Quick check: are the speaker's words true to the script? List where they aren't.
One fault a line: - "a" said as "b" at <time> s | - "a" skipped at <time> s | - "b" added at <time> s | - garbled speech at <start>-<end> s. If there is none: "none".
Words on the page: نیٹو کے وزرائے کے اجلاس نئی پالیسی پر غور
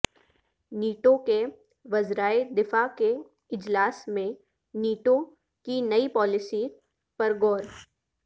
- "دفاع" added at 2.6 s
- "میں نیٹو کی" added at 4.1 s